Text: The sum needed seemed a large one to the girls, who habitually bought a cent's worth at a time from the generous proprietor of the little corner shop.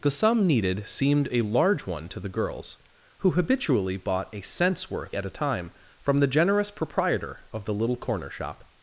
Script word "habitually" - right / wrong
right